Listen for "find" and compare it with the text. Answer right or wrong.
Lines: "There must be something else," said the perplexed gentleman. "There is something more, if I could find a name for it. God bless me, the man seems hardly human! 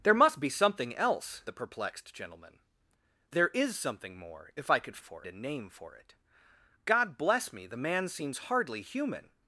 wrong